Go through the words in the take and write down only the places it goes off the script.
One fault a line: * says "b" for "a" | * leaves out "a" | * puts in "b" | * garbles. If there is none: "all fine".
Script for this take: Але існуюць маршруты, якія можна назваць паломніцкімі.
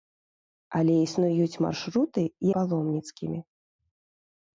* leaves out "якія можна назваць"